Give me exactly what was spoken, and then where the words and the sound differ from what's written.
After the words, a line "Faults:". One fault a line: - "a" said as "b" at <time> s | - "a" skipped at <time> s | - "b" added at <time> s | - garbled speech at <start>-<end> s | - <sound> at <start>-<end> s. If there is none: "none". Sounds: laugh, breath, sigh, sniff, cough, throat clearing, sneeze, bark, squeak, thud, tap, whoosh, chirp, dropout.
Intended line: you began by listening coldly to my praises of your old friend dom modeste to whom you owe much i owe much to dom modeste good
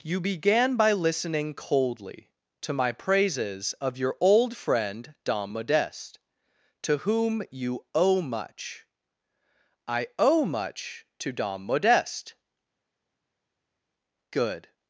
you began by listening coldly to my praises of your old friend dom modeste to whom you owe much i owe much to dom modeste good
Faults:
none